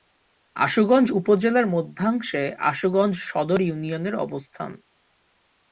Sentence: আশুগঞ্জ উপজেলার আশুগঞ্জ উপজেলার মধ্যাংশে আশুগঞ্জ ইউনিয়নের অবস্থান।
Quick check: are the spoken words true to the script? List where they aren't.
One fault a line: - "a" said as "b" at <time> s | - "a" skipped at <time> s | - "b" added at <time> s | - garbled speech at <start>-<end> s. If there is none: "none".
- "আশুগঞ্জ উপজেলার" skipped at 1.7 s
- "সদর" added at 3.2 s